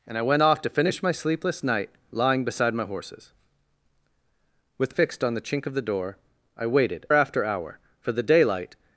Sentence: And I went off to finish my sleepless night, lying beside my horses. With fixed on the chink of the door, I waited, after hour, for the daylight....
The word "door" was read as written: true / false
true